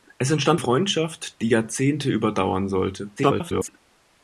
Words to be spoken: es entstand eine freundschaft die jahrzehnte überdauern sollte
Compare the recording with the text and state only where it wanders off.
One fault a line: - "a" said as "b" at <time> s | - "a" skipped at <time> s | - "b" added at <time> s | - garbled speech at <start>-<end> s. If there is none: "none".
- "eine" skipped at 0.6 s
- garbled speech at 3.2-3.7 s